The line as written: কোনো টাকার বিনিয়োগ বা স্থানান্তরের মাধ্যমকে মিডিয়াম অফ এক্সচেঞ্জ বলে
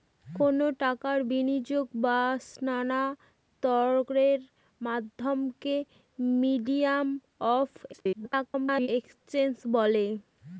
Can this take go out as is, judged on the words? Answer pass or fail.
fail